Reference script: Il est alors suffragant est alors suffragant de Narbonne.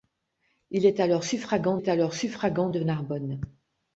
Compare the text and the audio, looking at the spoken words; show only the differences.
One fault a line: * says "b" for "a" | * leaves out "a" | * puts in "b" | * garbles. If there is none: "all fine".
all fine